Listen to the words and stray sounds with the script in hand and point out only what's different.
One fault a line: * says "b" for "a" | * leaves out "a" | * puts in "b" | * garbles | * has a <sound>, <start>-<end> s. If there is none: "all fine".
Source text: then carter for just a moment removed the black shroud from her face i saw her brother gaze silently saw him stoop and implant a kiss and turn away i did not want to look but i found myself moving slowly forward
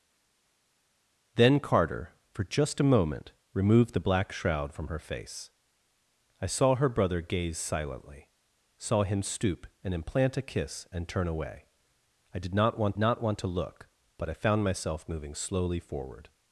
* puts in "not want"